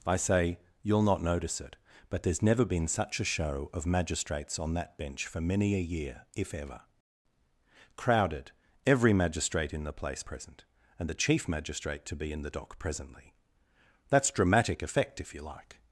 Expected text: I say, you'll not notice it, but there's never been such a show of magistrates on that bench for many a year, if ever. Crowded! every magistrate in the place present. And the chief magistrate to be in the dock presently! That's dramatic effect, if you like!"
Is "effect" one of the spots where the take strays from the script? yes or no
no